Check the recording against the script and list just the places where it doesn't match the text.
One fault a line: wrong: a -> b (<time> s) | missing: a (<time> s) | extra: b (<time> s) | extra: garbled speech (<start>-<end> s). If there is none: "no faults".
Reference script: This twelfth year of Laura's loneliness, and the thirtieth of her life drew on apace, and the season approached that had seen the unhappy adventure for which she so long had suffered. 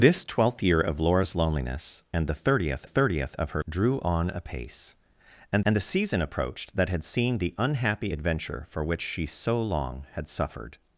extra: thirtieth (2.8 s)
missing: life (3.6 s)
extra: and (5.7 s)